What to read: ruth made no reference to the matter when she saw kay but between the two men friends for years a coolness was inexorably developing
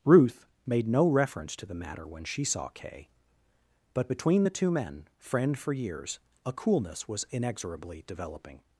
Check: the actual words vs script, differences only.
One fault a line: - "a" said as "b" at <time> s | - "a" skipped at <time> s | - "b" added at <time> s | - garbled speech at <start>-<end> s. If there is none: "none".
- "friends" said as "friend" at 5.2 s